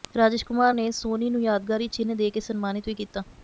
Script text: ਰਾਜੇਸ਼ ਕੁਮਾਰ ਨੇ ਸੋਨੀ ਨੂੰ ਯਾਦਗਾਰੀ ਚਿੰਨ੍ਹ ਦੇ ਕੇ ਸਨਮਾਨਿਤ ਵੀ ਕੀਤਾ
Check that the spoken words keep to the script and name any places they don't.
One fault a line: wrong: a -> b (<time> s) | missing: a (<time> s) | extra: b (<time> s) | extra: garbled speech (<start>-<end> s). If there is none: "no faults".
no faults